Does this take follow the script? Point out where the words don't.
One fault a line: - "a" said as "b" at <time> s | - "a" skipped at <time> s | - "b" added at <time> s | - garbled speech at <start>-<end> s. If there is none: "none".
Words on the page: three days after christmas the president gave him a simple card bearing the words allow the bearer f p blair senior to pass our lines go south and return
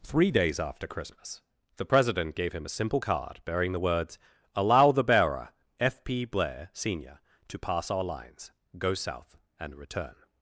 none